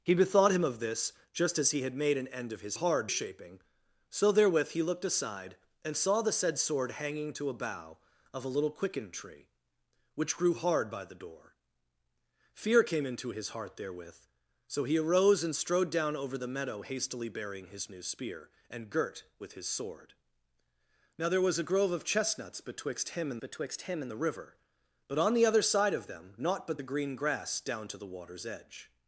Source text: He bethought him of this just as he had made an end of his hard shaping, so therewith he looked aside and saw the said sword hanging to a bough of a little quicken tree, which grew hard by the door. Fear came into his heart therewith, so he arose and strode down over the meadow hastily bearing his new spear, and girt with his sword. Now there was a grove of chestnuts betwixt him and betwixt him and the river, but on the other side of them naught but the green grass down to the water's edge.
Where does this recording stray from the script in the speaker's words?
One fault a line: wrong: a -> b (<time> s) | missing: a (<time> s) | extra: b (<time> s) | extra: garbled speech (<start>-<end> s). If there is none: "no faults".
no faults